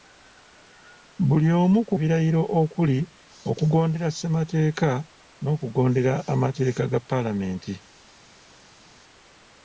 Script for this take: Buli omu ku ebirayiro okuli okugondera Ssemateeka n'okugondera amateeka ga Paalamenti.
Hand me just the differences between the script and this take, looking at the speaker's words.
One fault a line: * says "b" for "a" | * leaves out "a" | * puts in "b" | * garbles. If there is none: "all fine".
all fine